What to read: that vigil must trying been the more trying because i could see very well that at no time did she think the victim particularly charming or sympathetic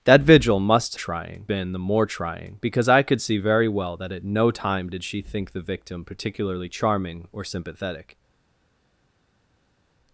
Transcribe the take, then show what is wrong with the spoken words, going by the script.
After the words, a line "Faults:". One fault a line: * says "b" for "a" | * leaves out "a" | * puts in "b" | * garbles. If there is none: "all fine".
that vigil must trying been the more trying because i could see very well that at no time did she think the victim particularly charming or sympathetic
Faults:
all fine